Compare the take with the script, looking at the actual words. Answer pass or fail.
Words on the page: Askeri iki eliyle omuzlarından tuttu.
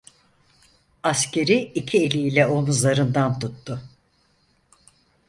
pass